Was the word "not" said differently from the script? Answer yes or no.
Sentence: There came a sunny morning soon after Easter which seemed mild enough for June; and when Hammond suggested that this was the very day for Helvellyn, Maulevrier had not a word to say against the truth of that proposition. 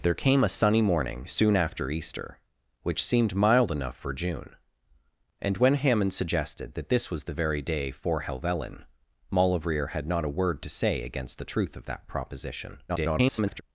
no